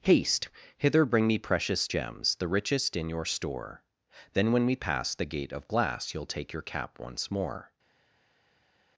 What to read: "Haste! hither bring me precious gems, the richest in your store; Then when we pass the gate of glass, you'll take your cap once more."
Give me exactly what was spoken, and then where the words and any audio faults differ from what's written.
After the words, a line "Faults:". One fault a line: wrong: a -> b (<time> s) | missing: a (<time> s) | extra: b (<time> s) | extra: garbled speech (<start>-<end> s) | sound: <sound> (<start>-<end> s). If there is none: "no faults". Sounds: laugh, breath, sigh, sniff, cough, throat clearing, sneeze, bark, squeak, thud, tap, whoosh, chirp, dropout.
"Haste! hither bring me precious gems, the richest in your store; Then when we pass the gate of glass, you'll take your cap once more."
Faults:
no faults